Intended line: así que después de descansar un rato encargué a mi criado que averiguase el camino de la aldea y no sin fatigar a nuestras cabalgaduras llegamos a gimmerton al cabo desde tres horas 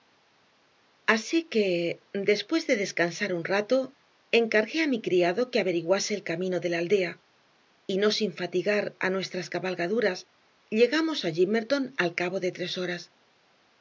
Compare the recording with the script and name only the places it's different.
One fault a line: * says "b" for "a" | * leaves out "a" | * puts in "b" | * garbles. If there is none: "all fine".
* says "de" for "desde"